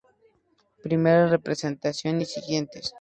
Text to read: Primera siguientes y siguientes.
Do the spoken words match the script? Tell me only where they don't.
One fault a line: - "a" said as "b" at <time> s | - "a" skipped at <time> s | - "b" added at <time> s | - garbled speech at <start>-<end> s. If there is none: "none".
- "siguientes" said as "representación" at 1.2 s